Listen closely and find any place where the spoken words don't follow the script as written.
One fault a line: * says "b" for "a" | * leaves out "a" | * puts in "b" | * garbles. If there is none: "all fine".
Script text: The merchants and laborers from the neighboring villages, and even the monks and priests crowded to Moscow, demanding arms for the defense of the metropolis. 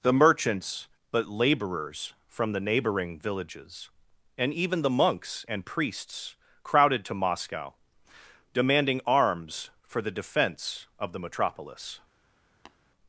* says "but" for "and"